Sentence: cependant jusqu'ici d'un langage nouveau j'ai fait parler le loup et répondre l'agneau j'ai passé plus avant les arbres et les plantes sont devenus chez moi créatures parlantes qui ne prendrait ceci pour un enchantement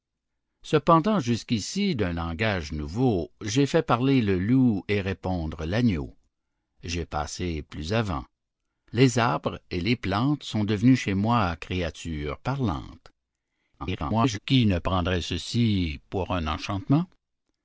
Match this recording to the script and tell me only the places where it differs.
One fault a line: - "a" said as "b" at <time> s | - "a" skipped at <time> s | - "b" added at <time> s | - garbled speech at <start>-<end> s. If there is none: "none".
- garbled speech at 13.8-14.4 s